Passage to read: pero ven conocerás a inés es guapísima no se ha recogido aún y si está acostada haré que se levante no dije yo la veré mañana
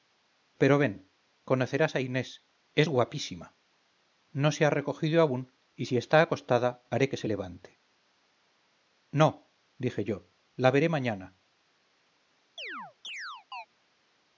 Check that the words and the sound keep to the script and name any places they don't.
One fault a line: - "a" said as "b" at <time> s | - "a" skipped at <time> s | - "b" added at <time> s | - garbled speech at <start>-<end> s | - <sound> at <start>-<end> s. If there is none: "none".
- chirp at 12.6-13.7 s